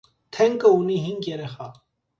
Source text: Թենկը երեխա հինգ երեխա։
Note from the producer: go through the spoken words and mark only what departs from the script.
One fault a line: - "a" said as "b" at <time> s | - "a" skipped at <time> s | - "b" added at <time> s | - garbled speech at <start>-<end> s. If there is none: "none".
- "երեխա" said as "ունի" at 0.8 s